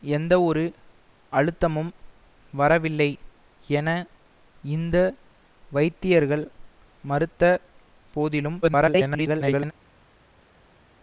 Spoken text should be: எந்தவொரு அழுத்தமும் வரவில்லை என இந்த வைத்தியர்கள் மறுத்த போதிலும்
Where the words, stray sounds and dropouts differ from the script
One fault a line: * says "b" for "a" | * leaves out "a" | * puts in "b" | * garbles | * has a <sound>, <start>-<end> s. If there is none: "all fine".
* garbles